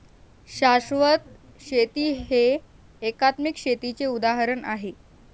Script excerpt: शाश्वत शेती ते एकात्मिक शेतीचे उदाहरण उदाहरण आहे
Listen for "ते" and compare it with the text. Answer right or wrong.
wrong